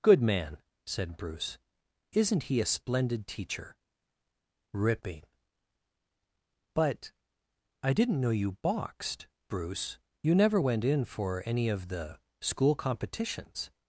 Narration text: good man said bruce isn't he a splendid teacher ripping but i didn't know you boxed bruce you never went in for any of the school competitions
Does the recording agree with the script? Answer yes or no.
yes